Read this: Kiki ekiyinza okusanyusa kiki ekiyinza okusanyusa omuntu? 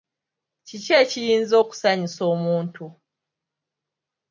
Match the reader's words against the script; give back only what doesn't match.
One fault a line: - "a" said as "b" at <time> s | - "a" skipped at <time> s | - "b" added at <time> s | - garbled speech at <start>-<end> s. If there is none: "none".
- "kiki ekiyinza okusanyusa" skipped at 2.2 s